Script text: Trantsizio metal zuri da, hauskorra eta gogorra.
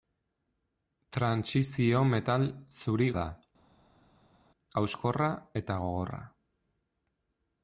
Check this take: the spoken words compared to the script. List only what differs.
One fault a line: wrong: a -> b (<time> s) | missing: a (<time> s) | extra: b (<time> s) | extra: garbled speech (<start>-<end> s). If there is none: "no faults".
no faults